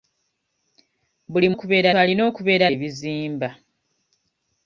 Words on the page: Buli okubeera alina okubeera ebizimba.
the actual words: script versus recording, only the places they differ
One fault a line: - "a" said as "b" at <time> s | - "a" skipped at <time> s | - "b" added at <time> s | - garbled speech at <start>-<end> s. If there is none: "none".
none